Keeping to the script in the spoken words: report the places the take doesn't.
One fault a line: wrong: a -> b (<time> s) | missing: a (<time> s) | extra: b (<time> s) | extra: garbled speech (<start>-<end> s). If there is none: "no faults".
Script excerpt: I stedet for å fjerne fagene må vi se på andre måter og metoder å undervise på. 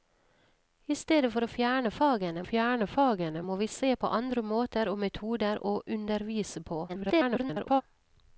extra: fjerne fagene (2.5 s)
extra: garbled speech (6.9-7.8 s)